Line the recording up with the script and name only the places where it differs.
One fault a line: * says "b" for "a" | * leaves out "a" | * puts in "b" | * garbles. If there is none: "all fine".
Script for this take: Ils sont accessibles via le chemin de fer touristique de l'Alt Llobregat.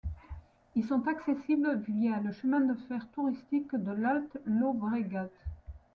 all fine